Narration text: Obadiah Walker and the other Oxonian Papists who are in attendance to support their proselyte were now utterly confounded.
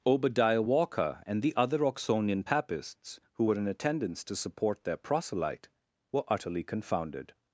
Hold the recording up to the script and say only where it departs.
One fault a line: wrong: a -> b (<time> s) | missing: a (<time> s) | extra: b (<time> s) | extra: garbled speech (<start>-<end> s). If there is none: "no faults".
wrong: are -> were (3.4 s)
missing: now (6.2 s)